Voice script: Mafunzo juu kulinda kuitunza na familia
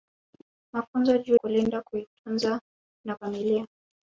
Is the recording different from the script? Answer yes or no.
no